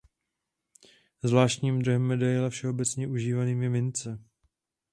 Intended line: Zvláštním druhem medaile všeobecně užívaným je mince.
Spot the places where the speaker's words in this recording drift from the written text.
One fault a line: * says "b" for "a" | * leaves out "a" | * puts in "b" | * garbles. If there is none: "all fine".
all fine